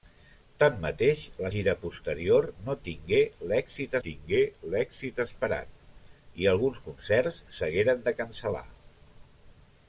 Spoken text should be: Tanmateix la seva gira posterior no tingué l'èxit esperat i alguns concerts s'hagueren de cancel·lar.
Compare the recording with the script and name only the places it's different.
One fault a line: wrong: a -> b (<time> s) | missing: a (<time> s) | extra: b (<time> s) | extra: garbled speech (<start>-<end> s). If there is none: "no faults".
missing: seva (1.5 s)
extra: tingué l'èxit (4.1 s)